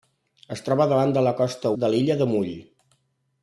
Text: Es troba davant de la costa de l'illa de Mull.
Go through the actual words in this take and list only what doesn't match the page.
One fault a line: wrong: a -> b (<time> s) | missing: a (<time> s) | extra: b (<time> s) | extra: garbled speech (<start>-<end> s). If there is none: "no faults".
no faults